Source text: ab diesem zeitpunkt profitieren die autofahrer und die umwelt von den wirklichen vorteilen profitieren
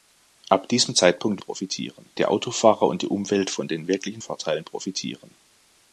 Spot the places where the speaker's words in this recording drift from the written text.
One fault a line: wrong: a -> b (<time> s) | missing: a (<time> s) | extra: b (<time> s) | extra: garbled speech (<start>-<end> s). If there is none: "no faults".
no faults